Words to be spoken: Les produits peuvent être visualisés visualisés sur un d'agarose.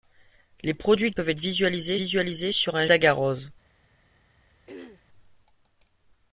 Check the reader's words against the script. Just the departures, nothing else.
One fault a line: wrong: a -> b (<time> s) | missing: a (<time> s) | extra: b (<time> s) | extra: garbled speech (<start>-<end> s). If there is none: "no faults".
no faults